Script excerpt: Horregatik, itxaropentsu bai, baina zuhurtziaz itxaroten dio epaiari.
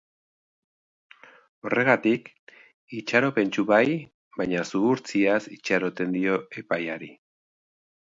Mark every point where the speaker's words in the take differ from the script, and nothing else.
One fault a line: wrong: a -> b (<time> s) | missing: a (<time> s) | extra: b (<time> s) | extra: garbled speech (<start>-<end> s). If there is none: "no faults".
no faults